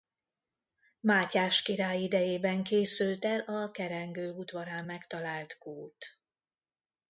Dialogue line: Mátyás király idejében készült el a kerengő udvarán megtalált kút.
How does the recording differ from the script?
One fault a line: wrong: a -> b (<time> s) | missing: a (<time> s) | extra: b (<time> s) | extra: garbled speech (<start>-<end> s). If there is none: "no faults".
no faults